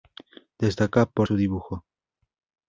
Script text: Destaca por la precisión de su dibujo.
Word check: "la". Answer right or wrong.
wrong